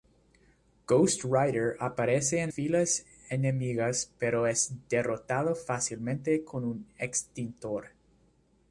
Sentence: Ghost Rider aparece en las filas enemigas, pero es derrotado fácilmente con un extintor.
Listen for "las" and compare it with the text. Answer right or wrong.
wrong